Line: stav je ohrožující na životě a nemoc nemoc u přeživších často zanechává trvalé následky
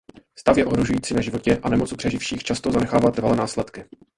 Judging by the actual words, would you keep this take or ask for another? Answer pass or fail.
fail